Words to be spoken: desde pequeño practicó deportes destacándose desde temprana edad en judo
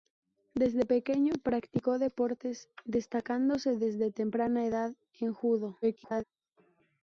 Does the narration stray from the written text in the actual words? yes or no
yes